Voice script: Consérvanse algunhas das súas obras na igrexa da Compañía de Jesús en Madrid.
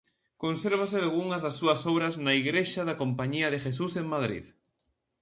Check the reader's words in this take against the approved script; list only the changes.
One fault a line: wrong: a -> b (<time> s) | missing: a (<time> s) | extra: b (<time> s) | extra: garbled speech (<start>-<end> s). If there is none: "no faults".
no faults